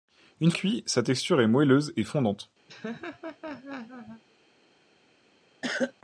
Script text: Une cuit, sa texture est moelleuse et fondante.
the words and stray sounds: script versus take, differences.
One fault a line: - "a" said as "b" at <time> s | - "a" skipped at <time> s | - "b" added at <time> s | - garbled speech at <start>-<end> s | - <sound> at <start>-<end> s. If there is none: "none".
- laugh at 2.7-4.2 s
- cough at 5.6-5.9 s